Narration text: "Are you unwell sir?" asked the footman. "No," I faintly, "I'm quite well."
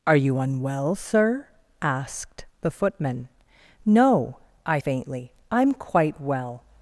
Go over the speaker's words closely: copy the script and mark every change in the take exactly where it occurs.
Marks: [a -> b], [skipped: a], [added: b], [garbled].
"Are you unwell sir?" asked the footman. "No," I faintly, "I'm quite well."